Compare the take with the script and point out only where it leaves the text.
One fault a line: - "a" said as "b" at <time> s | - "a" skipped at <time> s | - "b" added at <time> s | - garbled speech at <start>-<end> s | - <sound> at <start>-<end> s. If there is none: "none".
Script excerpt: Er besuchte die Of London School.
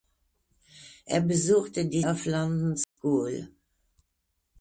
- dropout at 2.8-3.0 s